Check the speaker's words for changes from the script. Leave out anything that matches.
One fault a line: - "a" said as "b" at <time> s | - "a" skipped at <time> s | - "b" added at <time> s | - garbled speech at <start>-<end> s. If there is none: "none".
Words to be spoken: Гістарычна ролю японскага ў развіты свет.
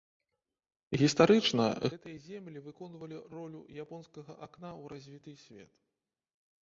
- "гэтыя землі выконвалі" added at 1.9 s
- "акна" added at 4.5 s